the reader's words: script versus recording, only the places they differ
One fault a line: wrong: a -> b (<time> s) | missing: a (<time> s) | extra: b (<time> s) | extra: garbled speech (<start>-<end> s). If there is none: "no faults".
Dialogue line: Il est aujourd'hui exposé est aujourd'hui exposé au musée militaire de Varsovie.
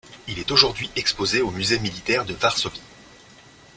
missing: est aujourd'hui exposé (1.4 s)